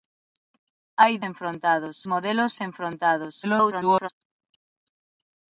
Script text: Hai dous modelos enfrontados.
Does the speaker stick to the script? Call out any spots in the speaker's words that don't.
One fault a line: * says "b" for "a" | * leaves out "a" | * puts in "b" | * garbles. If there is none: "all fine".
* says "enfrontados" for "dous"
* garbles